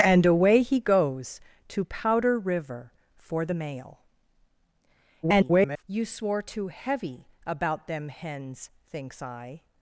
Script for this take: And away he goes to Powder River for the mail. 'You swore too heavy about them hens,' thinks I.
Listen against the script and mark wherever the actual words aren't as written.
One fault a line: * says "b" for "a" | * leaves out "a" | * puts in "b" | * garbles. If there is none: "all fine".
* garbles